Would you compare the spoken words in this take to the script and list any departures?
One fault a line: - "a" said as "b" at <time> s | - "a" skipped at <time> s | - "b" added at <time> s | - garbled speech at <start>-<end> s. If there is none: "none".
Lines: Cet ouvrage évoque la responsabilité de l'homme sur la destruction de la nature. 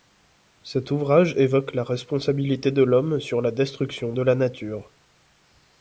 none